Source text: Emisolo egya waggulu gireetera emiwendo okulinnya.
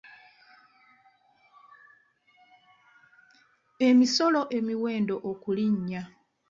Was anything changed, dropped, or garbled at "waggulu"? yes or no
yes